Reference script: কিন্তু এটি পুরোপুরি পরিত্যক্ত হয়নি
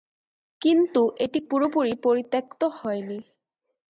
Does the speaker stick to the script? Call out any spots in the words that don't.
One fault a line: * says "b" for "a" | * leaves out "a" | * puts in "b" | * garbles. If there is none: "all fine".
all fine